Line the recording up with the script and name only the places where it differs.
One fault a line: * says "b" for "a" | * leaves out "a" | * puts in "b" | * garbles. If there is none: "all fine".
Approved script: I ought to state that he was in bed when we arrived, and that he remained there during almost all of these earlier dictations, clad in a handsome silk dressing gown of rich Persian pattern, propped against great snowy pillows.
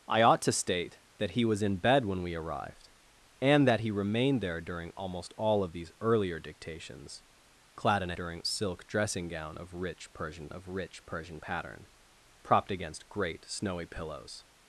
* says "during" for "handsome"
* puts in "of rich Persian"